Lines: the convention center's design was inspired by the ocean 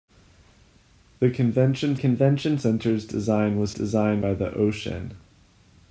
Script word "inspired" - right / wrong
wrong